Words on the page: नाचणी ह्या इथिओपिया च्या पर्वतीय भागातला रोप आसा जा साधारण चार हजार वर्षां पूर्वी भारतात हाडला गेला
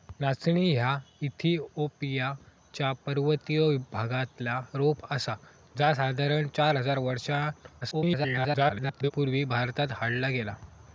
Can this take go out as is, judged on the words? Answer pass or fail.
fail